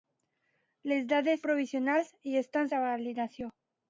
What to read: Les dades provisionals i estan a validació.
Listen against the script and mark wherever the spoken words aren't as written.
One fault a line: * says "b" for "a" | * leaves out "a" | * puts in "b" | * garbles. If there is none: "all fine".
all fine